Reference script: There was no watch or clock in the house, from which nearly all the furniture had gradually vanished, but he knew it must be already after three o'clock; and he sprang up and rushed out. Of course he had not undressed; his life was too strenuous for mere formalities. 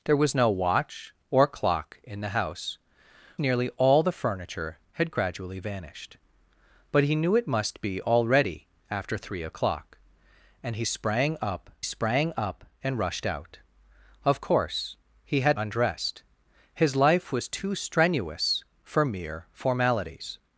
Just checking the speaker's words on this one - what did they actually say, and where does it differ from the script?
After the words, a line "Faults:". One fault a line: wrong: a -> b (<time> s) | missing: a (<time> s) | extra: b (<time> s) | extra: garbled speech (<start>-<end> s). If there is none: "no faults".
There was no watch or clock in the house, nearly all the furniture had gradually vanished, but he knew it must be already after three o'clock; and he sprang up sprang up and rushed out. Of course he had undressed; his life was too strenuous for mere formalities.
Faults:
missing: from which (2.8 s)
extra: sprang up (11.8 s)
missing: not (15.6 s)